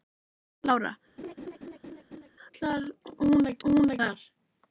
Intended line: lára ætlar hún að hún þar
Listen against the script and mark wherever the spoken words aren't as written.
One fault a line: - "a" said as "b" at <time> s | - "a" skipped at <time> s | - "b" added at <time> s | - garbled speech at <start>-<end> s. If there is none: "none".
none